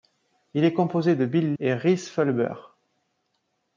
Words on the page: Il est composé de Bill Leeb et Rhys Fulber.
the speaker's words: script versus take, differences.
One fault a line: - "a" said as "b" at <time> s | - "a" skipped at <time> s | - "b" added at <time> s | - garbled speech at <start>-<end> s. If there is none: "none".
- "Leeb" skipped at 1.5 s